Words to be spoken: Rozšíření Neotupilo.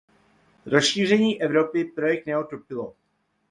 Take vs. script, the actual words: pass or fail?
fail